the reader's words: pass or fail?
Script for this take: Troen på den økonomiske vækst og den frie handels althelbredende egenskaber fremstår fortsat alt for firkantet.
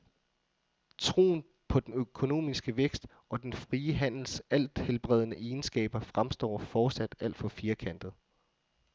pass